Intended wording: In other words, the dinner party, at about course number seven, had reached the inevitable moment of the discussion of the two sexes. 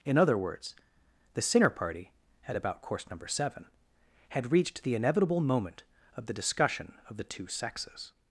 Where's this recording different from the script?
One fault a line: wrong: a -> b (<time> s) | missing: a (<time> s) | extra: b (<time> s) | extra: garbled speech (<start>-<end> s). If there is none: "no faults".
wrong: dinner -> sinner (1.4 s)